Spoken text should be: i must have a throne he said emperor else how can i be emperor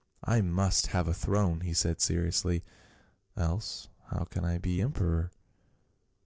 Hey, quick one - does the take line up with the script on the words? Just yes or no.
no